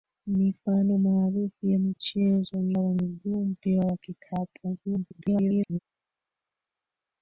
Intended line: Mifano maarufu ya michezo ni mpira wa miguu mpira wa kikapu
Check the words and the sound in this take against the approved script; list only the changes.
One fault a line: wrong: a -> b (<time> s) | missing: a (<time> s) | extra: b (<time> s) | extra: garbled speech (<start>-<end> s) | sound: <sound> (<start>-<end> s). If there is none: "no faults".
missing: mpira (2.8 s)
extra: garbled speech (4.8-5.8 s)